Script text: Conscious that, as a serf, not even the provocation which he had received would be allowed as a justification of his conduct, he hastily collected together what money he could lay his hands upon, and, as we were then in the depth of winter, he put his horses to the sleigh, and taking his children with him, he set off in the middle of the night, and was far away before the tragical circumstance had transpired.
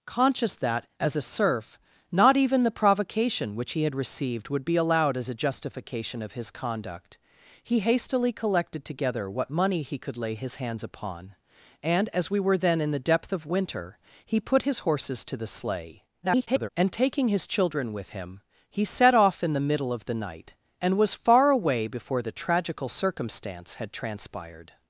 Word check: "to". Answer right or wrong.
right